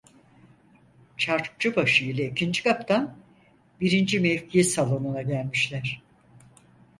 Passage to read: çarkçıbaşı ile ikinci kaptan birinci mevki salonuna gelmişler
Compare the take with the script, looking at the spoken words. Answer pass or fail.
pass